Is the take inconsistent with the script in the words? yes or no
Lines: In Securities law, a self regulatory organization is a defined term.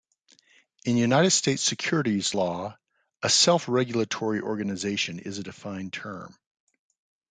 yes